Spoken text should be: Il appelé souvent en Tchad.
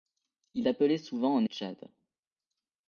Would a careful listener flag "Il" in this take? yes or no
no